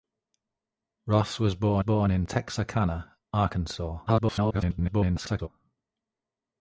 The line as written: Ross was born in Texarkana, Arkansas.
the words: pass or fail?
fail